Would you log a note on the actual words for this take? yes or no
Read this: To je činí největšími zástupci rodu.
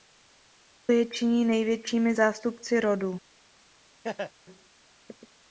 no